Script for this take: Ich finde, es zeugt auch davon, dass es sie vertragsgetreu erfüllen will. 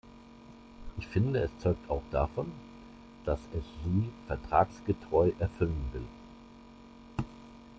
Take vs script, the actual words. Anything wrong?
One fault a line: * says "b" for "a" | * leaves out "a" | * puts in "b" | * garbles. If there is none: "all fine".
all fine